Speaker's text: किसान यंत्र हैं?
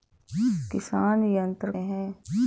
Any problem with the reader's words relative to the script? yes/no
no